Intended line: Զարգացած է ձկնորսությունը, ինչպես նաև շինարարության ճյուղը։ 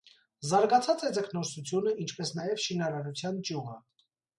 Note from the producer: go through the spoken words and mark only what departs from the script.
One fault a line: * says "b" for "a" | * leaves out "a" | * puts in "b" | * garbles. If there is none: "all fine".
all fine